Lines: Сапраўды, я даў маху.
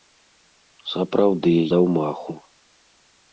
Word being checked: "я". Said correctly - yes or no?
no